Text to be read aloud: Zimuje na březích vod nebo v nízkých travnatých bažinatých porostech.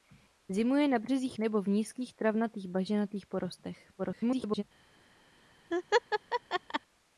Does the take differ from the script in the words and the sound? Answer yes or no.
yes